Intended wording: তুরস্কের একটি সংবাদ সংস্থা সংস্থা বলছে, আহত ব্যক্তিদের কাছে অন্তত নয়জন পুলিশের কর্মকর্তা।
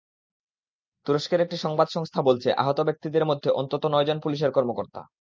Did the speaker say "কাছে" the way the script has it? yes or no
no